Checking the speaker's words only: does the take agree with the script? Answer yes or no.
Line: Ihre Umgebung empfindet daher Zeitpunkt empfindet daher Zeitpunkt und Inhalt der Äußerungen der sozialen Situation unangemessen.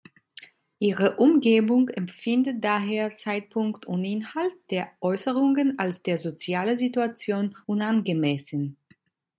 no